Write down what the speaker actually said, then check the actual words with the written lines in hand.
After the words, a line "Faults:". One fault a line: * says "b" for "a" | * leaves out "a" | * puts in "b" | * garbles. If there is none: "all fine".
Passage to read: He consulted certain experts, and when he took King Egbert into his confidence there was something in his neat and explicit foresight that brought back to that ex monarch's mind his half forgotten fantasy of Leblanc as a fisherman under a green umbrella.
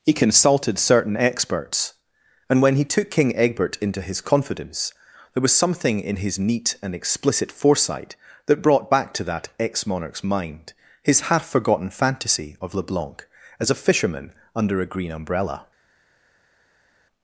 He consulted certain experts, and when he took King Egbert into his confidence there was something in his neat and explicit foresight that brought back to that ex monarch's mind his half forgotten fantasy of Leblanc as a fisherman under a green umbrella.
Faults:
all fine